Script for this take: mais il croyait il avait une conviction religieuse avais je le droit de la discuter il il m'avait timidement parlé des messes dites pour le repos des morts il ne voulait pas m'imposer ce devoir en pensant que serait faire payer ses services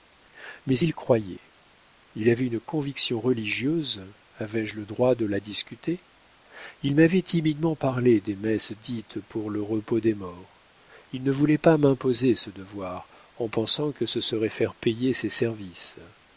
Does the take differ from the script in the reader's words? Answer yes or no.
yes